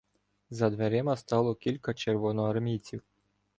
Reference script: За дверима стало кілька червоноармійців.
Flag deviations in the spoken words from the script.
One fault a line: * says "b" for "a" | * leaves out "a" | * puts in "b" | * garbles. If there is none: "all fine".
all fine